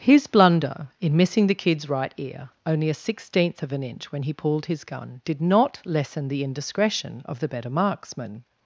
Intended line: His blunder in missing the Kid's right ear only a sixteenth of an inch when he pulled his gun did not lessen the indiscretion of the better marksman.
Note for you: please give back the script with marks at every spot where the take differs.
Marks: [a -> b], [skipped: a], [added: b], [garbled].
His blunder in missing the Kid's right ear only a sixteenth of an inch when he pulled his gun did not lessen the indiscretion of the better marksman.